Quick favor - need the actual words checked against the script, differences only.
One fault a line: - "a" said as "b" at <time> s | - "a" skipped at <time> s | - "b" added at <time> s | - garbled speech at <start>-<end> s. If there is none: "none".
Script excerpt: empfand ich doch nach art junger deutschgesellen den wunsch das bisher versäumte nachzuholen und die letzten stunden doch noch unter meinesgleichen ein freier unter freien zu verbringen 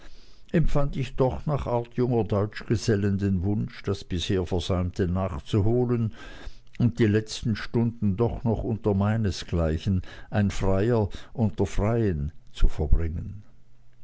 none